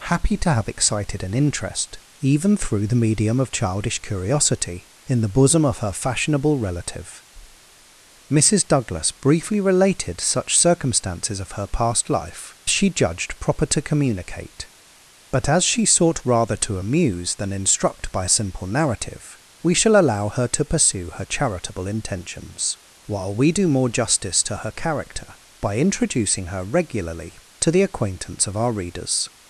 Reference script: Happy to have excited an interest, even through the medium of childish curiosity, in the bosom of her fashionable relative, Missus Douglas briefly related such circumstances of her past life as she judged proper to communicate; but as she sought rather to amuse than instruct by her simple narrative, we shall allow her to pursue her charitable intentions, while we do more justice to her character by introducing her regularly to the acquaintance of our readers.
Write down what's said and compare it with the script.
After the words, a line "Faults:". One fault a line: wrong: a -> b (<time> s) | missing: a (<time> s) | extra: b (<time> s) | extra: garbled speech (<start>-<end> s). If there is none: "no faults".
Happy to have excited an interest, even through the medium of childish curiosity, in the bosom of her fashionable relative, Missus Douglas briefly related such circumstances of her past life she judged proper to communicate; but as she sought rather to amuse than instruct by simple narrative, we shall allow her to pursue her charitable intentions, while we do more justice to her character by introducing her regularly to the acquaintance of our readers.
Faults:
missing: as (12.6 s)
missing: her (18.3 s)